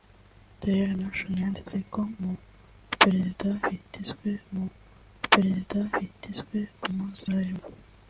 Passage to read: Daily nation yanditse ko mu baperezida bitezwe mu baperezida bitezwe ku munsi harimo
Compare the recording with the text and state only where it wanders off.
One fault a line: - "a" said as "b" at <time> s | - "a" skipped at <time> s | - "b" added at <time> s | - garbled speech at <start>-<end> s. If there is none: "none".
none